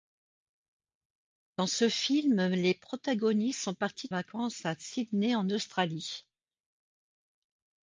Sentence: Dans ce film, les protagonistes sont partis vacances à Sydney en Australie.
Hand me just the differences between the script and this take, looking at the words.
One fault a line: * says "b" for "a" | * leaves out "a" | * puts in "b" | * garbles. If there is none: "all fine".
all fine